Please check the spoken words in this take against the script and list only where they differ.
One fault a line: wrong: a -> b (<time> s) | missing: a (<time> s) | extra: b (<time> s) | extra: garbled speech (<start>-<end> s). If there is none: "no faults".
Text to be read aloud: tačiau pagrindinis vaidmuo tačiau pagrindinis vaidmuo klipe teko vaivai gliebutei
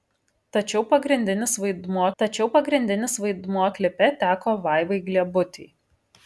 no faults